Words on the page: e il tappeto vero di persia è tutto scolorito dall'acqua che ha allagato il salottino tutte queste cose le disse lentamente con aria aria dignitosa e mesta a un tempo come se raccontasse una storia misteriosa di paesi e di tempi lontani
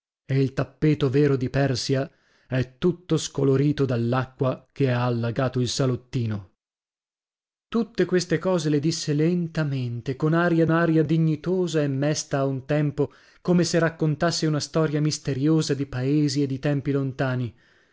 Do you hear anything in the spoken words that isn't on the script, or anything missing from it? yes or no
no